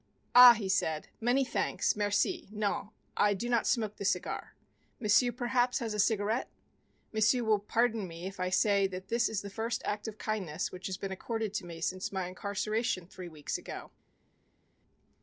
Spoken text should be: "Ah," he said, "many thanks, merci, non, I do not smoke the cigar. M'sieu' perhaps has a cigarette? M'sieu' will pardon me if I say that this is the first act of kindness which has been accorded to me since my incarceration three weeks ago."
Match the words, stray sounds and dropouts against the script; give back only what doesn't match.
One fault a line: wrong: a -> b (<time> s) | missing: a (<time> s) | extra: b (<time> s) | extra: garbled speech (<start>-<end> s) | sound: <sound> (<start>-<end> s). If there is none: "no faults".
no faults